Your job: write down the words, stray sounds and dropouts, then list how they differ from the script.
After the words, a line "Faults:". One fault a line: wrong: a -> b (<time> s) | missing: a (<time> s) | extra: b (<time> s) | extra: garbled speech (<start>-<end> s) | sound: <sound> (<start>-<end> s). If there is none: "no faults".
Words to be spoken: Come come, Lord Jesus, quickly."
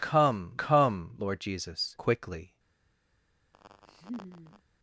Come come, Lord Jesus, quickly."
Faults:
sound: laugh (3.5-4.6 s)